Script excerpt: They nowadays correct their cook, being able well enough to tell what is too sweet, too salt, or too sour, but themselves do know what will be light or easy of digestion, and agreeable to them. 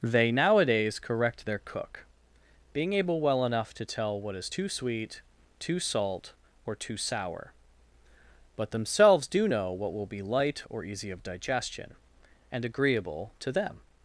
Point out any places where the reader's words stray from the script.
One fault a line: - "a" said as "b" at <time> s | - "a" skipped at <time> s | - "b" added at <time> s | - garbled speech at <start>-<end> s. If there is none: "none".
none